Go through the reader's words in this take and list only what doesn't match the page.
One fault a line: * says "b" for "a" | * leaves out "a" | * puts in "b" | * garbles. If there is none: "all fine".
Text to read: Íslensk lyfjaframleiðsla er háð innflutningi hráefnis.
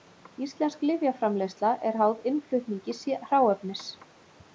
all fine